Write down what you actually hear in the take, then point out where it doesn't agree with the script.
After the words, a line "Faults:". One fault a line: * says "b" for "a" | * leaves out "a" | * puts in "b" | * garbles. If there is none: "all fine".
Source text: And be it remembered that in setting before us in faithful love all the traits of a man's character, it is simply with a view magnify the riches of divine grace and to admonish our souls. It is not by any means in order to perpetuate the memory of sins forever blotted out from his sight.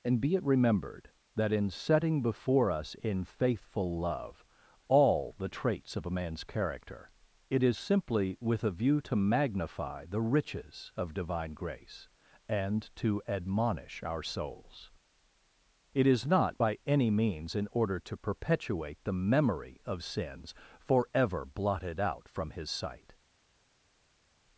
And be it remembered that in setting before us in faithful love all the traits of a man's character, it is simply with a view to magnify the riches of divine grace and to admonish our souls. It is not by any means in order to perpetuate the memory of sins forever blotted out from his sight.
Faults:
* puts in "to"